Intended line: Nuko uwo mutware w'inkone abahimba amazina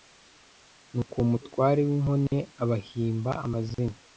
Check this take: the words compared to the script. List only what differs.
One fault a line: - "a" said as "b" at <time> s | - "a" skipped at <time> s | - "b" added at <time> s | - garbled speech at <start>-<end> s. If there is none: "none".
none